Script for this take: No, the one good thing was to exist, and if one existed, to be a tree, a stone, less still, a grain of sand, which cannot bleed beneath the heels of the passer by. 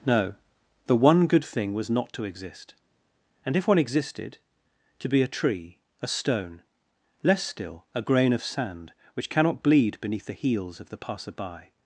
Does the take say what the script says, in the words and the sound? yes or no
no